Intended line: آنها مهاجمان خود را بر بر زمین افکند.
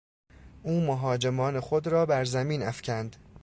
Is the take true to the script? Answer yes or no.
no